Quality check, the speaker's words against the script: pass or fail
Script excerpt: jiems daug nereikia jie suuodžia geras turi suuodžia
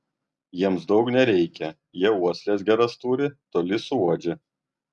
fail